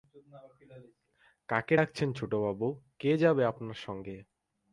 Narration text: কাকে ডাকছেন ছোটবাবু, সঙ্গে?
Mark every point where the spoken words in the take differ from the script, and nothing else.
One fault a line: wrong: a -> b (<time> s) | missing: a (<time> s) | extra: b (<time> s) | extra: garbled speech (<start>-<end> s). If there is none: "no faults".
extra: কে যাবে আপনার (3.0 s)